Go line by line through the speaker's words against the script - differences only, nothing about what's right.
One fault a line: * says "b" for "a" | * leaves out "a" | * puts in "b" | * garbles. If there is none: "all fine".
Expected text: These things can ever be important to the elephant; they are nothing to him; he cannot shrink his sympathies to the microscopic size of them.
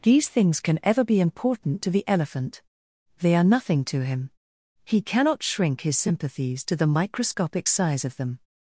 all fine